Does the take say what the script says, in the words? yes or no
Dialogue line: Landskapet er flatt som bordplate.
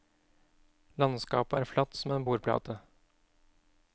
no